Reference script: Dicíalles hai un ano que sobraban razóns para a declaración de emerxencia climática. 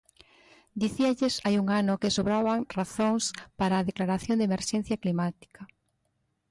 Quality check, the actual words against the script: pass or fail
pass